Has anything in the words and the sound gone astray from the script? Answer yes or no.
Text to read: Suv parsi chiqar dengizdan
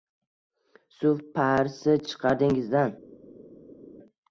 no